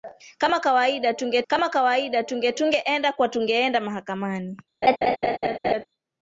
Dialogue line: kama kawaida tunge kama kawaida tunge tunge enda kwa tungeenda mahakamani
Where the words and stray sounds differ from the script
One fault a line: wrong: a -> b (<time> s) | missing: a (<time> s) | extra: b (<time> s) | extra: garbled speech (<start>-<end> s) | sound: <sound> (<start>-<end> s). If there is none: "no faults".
sound: laugh (4.8-5.9 s)